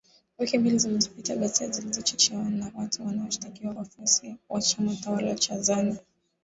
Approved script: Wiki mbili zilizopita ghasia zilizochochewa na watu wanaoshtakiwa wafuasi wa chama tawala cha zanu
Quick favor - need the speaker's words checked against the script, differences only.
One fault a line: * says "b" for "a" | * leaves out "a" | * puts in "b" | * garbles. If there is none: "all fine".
all fine